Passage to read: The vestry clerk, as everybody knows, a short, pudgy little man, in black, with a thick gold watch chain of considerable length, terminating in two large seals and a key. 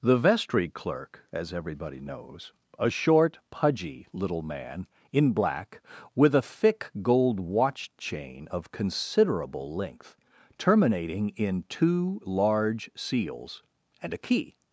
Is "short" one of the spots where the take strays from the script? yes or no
no